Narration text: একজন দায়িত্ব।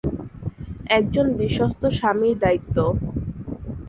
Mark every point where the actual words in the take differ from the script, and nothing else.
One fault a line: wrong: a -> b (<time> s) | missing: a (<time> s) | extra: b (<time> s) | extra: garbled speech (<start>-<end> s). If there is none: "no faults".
extra: বিশ্বস্ত স্বামীর (1.3 s)